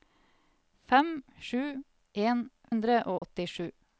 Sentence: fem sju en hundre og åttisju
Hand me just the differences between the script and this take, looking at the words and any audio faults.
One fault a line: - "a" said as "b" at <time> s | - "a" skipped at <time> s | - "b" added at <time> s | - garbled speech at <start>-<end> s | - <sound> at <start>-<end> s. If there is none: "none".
- dropout at 3.2-3.2 s